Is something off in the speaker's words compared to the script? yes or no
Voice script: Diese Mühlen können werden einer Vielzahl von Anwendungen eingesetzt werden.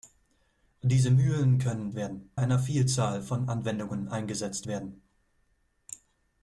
no